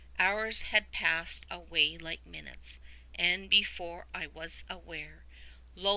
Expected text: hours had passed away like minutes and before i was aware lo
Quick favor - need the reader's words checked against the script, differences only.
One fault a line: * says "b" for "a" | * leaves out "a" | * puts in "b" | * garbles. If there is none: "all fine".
all fine